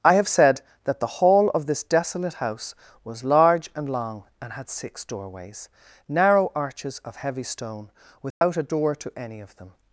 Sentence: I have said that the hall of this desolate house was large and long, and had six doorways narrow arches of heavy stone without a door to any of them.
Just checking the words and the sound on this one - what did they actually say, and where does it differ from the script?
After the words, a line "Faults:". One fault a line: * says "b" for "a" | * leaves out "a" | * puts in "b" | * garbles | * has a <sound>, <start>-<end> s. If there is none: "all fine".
I have said that the hall of this desolate house was large and long, and had six doorways narrow arches of heavy stone without a door to any of them.
Faults:
* has a dropout, 8.3-8.4 s